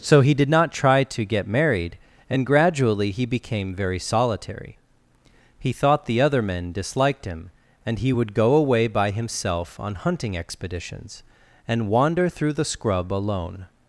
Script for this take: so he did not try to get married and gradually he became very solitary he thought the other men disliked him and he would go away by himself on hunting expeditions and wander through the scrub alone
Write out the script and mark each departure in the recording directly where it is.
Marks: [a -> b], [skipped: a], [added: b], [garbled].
so he did not try to get married and gradually he became very solitary he thought the other men disliked him and he would go away by himself on hunting expeditions and wander through the scrub alone